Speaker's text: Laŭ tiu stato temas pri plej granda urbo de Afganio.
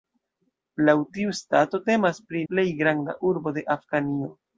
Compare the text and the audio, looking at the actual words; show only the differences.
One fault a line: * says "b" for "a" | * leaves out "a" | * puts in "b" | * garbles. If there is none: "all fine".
all fine